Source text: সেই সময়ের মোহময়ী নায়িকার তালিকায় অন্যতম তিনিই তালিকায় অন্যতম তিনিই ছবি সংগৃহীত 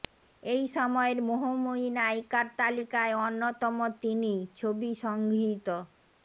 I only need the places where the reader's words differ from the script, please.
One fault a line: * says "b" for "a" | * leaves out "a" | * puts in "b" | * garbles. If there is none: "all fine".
* says "এই" for "সেই"
* leaves out "তালিকায় অন্যতম তিনিই"